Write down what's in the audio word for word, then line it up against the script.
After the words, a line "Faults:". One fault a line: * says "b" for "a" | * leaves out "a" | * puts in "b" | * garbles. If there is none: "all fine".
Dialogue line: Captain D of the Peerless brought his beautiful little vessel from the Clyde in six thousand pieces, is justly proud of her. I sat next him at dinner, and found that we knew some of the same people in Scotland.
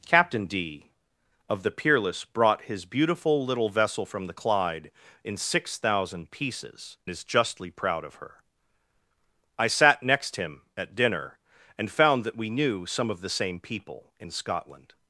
Captain D of the Peerless brought his beautiful little vessel from the Clyde in six thousand pieces, is justly proud of her. I sat next him at dinner, and found that we knew some of the same people in Scotland.
Faults:
all fine